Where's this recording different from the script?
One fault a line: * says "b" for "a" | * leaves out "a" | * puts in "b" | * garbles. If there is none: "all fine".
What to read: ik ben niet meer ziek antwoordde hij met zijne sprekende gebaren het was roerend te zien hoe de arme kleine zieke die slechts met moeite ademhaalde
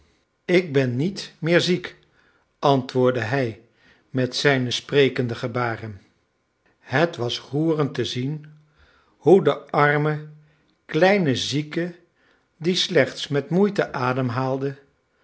all fine